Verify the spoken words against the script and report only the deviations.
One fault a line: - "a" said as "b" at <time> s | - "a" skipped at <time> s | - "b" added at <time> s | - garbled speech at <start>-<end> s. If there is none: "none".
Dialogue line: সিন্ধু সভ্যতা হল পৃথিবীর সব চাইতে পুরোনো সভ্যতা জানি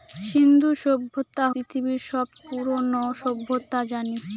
- "হল" skipped at 1.4 s
- "চাইতে" skipped at 2.3 s